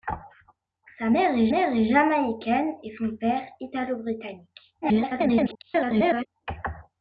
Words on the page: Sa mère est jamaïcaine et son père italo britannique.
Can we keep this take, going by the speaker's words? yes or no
no